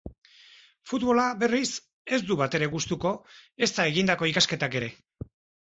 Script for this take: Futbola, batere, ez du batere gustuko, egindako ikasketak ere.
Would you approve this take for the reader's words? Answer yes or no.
no